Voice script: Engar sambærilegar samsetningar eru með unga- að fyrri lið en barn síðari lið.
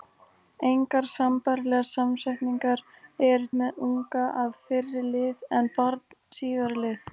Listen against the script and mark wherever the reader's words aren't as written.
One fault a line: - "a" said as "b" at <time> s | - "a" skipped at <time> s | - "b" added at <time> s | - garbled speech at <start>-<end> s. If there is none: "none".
none